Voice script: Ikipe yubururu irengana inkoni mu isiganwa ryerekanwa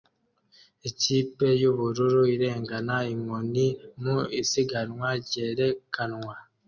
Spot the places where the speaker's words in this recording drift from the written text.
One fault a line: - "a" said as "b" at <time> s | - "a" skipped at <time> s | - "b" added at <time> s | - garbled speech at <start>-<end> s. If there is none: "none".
none